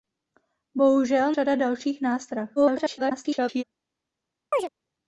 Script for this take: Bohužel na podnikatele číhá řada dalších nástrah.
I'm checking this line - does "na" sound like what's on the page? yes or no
no